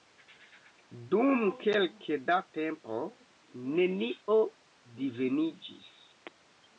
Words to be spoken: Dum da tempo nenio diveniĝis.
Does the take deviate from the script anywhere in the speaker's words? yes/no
yes